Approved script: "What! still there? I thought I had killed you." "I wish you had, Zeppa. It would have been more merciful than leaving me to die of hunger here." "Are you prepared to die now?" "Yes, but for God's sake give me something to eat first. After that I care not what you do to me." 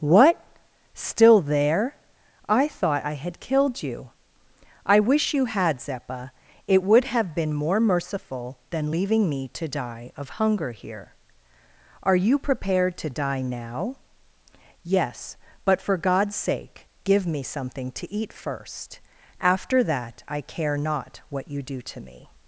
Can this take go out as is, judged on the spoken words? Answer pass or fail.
pass